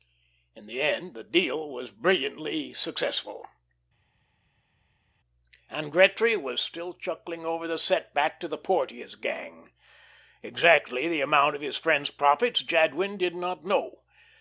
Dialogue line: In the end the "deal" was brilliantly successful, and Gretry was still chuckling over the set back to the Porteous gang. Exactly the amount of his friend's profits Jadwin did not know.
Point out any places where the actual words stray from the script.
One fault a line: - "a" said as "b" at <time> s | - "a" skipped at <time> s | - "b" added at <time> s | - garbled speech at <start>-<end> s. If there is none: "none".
none